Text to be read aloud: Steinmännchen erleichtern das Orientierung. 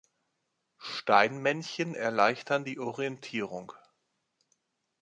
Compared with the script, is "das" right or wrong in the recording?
wrong